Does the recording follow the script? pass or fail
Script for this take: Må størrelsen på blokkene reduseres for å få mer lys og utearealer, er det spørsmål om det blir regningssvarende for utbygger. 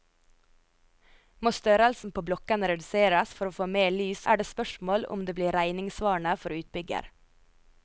fail